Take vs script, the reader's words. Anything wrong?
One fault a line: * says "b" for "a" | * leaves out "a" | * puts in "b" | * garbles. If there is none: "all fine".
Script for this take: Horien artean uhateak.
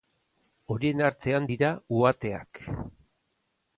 * puts in "dira"